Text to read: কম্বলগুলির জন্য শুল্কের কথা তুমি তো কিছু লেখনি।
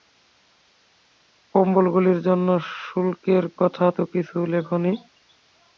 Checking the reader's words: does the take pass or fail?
fail